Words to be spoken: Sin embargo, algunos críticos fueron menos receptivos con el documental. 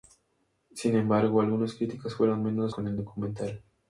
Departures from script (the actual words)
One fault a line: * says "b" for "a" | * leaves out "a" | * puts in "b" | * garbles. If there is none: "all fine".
* leaves out "receptivos"